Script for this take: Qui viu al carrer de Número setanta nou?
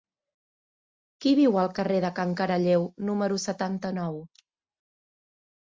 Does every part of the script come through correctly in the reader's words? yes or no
no